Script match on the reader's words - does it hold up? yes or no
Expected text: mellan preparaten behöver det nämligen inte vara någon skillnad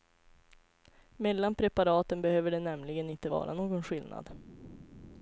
yes